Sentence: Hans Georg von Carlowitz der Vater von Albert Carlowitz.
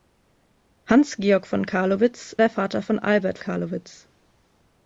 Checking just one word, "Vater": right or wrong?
right